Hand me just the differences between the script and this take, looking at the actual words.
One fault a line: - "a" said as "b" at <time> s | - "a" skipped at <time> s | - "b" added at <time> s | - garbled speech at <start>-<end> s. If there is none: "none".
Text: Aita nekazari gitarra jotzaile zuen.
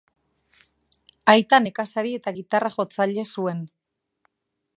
- "eta" added at 2.2 s